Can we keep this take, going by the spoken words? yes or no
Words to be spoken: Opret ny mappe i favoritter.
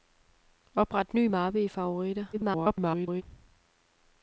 no